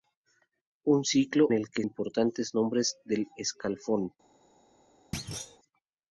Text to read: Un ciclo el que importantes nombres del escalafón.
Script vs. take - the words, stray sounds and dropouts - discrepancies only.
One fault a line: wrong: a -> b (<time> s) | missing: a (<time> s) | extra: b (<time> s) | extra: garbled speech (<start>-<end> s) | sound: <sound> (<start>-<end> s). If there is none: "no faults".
sound: thud (5.1-5.6 s)